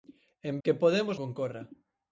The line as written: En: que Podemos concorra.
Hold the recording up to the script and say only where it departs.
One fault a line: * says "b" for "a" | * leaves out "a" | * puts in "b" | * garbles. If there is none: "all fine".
all fine